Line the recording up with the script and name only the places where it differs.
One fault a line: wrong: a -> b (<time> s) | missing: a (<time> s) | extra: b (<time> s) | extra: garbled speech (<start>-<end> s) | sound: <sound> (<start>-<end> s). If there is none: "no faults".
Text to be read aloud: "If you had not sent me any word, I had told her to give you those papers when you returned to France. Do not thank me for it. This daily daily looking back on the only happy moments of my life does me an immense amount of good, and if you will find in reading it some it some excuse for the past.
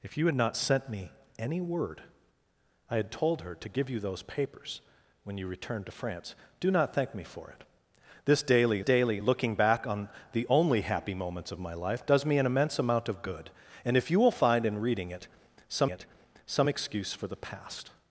no faults